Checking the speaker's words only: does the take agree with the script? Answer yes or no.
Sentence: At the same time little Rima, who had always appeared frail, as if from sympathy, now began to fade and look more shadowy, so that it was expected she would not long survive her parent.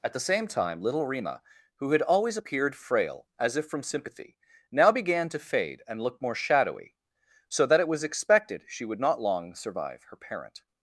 yes